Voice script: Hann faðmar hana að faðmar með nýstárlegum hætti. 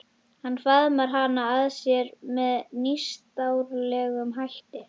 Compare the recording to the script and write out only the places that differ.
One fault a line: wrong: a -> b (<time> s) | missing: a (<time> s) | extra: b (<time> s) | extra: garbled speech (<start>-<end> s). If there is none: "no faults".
wrong: faðmar -> sér (1.8 s)